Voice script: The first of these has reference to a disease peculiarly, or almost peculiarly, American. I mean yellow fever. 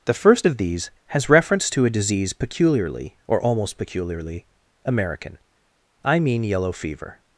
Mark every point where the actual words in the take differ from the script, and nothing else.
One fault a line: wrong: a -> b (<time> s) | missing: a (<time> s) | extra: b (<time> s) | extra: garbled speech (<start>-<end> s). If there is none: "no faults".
no faults